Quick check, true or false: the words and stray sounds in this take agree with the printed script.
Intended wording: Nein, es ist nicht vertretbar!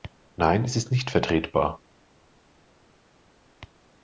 true